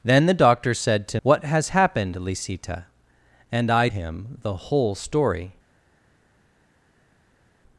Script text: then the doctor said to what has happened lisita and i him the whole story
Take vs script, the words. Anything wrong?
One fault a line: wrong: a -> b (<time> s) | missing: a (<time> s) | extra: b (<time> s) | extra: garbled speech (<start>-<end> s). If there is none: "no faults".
no faults